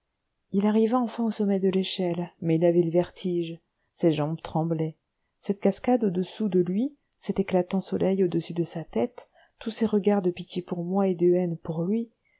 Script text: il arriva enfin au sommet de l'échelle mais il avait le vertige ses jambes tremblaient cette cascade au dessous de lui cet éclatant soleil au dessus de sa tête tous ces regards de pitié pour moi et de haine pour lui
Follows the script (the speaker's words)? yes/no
yes